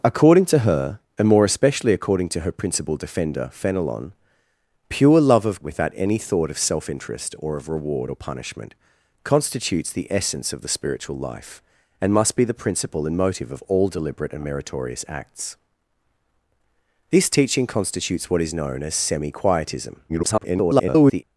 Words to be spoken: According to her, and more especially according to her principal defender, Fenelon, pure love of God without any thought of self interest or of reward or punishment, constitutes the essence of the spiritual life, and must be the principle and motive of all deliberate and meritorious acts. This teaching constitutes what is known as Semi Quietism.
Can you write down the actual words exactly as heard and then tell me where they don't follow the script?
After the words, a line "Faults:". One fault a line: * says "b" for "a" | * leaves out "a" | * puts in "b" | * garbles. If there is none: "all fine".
According to her, and more especially according to her principal defender, Fenelon, pure love of Without any thought of self interest or of reward or punishment, constitutes the essence of the spiritual life, and must be the principle and motive of all deliberate and meritorious acts. This teaching constitutes what is known as Semi Quietism. [garbled]
Faults:
* leaves out "God"
* garbles